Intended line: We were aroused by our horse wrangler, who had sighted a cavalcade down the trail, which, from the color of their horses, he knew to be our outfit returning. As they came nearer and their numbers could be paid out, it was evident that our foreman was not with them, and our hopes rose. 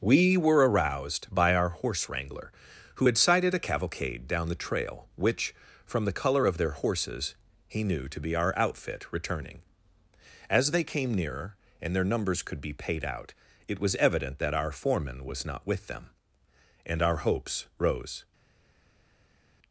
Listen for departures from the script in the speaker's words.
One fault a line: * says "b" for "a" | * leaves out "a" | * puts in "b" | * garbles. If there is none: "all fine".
all fine